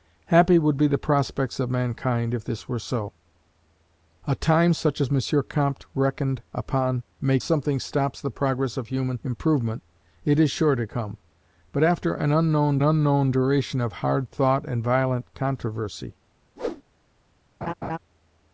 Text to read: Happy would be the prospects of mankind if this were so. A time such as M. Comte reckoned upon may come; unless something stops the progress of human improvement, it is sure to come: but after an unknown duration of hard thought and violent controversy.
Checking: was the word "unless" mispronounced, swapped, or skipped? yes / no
yes